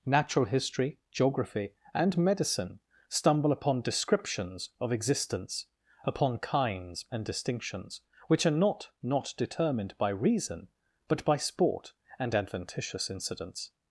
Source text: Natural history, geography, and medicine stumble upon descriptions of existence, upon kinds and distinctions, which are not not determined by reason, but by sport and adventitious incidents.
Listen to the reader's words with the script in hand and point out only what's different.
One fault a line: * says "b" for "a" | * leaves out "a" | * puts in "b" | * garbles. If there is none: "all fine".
all fine